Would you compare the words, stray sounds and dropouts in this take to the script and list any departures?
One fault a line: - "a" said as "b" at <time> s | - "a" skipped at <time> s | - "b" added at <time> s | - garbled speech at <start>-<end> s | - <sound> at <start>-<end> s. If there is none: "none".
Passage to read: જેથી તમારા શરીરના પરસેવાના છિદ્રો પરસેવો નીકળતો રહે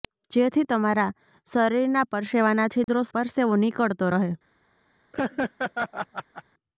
- dropout at 2.8-2.9 s
- laugh at 5.1-6.4 s